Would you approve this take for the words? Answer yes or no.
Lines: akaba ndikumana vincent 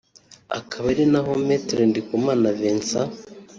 no